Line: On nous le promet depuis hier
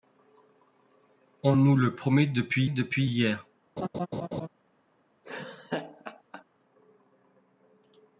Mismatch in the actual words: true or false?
true